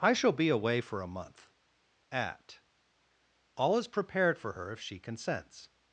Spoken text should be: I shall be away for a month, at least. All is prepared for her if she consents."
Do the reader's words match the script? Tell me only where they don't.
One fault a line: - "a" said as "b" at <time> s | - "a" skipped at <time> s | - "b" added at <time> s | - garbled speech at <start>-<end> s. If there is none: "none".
- "least" skipped at 2.6 s